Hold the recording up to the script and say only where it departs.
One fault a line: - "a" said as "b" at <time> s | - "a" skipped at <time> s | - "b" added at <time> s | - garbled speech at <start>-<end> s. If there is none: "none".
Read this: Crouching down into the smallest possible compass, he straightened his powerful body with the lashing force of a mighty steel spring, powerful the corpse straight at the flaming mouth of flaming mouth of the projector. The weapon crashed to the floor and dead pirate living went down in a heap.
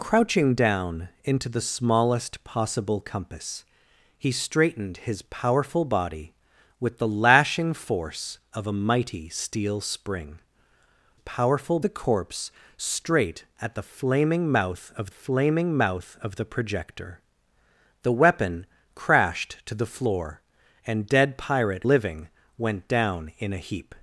none